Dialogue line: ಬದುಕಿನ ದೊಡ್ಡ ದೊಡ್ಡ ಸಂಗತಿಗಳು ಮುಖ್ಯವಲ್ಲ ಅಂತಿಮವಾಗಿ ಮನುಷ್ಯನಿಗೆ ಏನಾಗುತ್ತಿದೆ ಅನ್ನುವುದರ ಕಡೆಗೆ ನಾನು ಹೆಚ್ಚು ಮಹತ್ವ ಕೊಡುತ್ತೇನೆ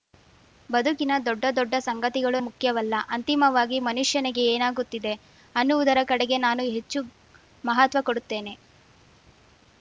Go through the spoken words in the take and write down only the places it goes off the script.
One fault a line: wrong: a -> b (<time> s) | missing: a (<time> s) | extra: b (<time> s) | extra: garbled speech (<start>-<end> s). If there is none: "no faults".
no faults